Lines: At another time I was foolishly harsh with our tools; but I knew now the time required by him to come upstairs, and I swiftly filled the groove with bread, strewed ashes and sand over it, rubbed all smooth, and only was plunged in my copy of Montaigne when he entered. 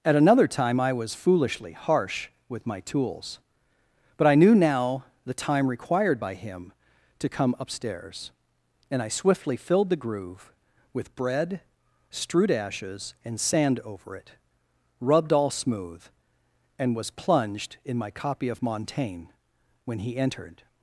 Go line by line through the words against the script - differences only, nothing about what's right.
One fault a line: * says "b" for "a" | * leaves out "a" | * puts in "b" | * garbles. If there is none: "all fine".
* says "my" for "our"
* leaves out "only"